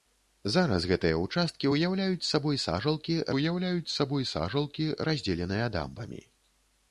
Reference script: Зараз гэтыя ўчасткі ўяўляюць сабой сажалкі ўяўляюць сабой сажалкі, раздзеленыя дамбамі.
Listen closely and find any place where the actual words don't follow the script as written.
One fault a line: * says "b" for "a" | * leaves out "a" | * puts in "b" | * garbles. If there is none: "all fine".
all fine